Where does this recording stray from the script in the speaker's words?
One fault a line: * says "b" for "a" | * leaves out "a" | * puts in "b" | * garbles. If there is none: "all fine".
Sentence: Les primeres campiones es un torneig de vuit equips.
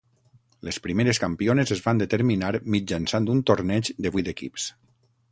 * puts in "van determinar mitjançant"